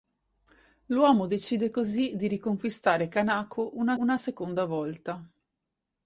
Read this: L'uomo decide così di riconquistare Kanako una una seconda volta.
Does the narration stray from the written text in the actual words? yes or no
no